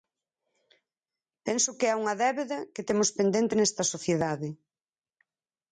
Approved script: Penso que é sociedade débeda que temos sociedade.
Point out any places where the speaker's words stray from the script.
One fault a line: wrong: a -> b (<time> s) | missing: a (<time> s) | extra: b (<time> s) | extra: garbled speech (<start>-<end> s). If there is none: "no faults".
wrong: sociedade -> unha (2.0 s)
extra: pendente nesta (3.2 s)